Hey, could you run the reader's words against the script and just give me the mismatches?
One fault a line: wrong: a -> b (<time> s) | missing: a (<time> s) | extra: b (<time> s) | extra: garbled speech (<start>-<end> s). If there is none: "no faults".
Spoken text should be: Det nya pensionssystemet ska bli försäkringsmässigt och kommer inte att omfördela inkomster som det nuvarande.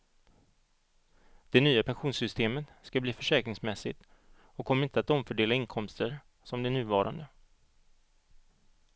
no faults